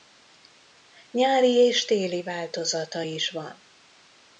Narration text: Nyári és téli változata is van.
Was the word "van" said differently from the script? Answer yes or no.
no